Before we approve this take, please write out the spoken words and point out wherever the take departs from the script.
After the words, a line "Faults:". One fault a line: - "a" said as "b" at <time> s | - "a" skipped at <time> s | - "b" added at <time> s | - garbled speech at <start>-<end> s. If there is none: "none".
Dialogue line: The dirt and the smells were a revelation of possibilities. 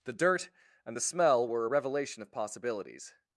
The dirt and the smell were a revelation of possibilities.
Faults:
- "smells" said as "smell" at 1.0 s